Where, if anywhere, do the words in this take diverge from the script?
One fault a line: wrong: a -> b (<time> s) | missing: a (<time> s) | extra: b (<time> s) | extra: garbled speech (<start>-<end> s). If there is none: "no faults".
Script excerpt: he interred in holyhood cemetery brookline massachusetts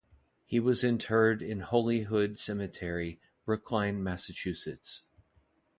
extra: was (0.6 s)